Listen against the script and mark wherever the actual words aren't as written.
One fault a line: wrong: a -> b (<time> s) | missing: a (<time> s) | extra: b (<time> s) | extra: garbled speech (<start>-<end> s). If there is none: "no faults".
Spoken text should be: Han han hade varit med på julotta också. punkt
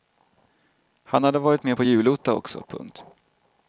missing: han (1.2 s)